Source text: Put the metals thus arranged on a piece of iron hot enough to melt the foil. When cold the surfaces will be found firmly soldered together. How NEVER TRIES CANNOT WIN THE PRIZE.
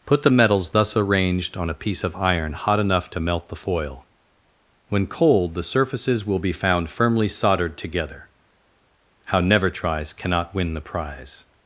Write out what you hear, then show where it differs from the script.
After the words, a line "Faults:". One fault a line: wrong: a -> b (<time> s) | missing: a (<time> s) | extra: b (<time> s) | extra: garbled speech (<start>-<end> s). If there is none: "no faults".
Put the metals thus arranged on a piece of iron hot enough to melt the foil. When cold the surfaces will be found firmly soldered together. How NEVER TRIES CANNOT WIN THE PRIZE.
Faults:
no faults